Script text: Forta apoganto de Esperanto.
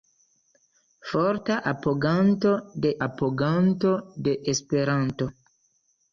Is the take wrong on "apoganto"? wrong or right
right